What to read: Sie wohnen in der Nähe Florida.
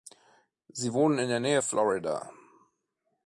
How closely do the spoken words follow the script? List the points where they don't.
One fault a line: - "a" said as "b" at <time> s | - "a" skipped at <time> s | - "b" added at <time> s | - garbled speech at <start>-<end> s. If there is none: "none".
none